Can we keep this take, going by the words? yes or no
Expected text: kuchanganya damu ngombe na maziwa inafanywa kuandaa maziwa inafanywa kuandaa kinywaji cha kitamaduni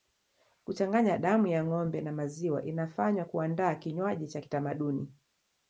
no